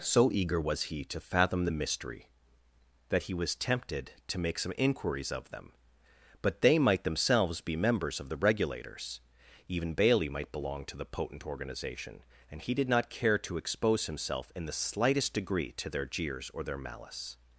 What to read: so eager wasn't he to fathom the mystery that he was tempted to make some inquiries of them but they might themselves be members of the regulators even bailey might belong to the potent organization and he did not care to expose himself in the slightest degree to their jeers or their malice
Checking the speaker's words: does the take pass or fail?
fail